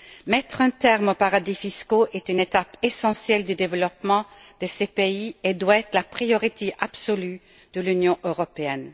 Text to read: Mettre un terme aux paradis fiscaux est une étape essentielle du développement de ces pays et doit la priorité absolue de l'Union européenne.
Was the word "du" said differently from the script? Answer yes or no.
no